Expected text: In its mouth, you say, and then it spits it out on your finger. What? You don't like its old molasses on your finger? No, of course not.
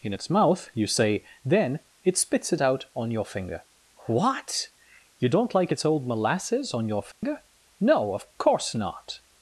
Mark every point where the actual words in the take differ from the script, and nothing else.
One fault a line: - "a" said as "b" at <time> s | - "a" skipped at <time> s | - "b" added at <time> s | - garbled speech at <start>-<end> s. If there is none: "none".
- "and" skipped at 1.2 s